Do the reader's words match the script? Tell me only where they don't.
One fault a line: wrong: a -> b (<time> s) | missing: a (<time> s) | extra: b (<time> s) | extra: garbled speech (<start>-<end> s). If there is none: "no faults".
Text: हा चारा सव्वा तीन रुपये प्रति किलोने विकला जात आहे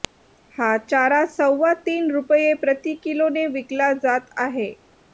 no faults